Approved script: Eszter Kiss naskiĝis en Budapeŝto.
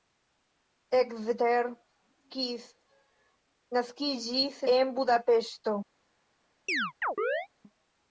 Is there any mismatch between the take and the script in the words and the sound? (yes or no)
yes